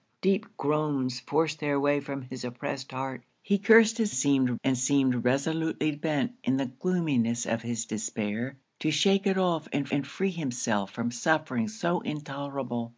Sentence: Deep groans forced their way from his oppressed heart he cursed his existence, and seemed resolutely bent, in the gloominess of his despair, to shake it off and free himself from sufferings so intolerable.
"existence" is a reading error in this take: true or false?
true